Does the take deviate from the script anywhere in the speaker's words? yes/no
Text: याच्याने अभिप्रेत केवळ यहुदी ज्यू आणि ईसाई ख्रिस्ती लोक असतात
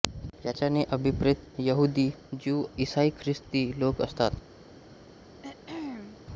yes